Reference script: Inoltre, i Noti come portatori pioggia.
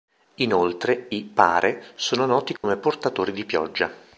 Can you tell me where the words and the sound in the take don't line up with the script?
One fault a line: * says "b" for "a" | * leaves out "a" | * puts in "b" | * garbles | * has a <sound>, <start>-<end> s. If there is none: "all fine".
* puts in "Pare sono"
* has a dropout, 2.6-2.6 s
* puts in "di"